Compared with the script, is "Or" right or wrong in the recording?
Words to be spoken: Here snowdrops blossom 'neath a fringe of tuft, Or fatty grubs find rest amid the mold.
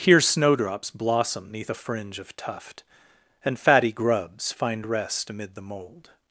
wrong